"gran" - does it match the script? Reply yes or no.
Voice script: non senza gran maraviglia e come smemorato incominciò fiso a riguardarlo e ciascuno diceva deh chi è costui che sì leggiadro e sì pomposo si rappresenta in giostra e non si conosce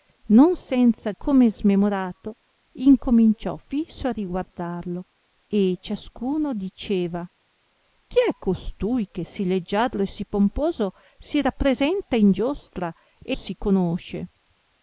no